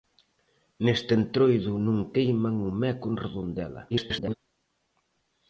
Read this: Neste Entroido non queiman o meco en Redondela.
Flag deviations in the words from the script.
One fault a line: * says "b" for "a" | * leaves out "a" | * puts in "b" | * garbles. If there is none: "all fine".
* garbles